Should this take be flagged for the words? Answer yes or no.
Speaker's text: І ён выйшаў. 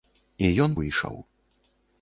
no